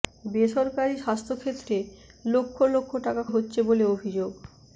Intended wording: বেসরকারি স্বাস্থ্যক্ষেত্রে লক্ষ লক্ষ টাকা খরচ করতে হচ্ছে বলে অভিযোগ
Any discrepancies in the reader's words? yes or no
yes